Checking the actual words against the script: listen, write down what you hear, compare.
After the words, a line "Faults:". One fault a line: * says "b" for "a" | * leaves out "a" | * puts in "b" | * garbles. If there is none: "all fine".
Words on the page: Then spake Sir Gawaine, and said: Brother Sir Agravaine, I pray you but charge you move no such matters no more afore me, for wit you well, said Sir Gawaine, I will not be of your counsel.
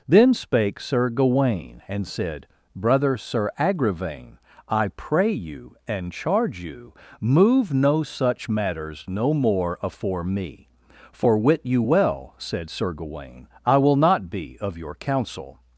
Then spake Sir Gawaine, and said: Brother Sir Agravaine, I pray you and charge you move no such matters no more afore me, for wit you well, said Sir Gawaine, I will not be of your counsel.
Faults:
* says "and" for "but"